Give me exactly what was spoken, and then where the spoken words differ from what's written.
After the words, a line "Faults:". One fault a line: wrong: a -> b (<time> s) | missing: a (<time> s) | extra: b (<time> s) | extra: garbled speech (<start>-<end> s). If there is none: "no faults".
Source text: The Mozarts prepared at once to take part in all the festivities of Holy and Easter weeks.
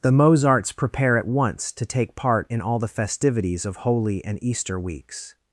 The Mozarts prepare at once to take part in all the festivities of Holy and Easter weeks.
Faults:
wrong: prepared -> prepare (0.7 s)